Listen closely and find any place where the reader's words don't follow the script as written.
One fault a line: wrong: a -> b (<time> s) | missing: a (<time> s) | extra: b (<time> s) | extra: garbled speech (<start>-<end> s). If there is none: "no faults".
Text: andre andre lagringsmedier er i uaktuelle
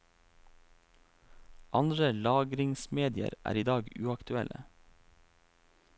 missing: andre (2.1 s)
extra: dag (3.7 s)